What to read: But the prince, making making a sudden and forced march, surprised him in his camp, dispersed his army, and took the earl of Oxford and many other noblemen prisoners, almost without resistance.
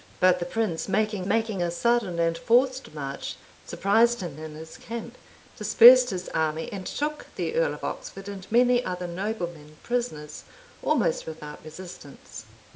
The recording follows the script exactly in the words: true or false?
true